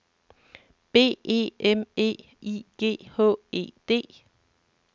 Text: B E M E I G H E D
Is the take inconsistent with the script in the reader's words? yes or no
no